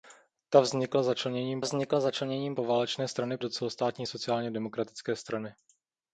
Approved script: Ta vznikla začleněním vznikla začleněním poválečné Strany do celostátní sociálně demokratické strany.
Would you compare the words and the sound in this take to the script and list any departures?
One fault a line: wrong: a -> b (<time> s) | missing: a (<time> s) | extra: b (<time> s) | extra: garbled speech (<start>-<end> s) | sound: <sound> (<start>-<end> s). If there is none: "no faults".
no faults